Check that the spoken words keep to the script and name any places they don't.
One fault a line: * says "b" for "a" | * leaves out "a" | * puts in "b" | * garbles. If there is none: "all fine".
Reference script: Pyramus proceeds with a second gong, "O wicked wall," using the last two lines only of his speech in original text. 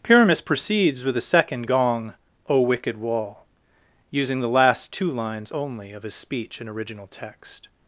all fine